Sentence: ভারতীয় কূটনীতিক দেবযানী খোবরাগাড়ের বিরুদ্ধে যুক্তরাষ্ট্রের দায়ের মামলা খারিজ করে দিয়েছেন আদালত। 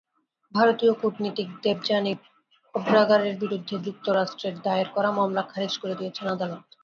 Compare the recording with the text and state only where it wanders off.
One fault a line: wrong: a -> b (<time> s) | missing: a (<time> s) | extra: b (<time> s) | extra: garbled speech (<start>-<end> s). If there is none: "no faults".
extra: করা (5.0 s)